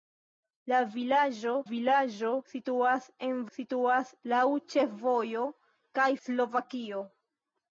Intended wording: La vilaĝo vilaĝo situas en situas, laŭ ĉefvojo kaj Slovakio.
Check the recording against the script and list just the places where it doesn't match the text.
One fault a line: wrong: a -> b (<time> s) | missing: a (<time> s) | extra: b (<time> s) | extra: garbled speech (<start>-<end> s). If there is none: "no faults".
no faults